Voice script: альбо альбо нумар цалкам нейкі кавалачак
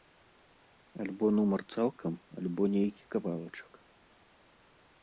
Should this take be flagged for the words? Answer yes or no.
yes